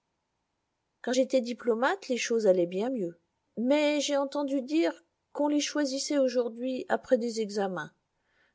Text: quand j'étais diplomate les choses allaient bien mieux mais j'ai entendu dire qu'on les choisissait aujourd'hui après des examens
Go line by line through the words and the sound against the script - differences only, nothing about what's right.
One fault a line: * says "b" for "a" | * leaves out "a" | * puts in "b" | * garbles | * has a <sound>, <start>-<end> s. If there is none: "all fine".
all fine